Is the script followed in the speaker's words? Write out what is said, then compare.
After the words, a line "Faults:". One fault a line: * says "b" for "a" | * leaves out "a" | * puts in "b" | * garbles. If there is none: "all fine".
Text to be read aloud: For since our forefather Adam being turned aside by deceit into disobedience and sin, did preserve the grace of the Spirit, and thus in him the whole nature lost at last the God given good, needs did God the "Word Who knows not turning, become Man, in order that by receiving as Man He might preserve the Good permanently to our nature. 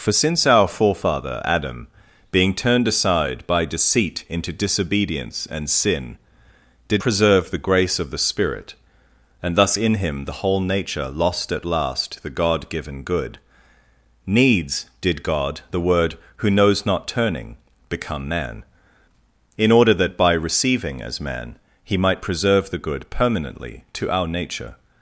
For since our forefather Adam being turned aside by deceit into disobedience and sin, did preserve the grace of the Spirit, and thus in him the whole nature lost at last the God given good, needs did God the "Word Who knows not turning, become Man, in order that by receiving as Man He might preserve the Good permanently to our nature.
Faults:
all fine